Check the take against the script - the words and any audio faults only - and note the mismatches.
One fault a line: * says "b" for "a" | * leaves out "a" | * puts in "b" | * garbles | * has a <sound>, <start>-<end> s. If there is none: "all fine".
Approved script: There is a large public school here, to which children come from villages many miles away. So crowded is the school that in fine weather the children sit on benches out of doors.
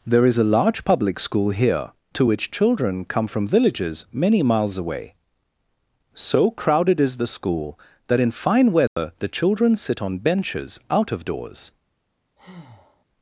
* has a dropout, 8.9-9.0 s
* has a breath, 12.4-13.0 s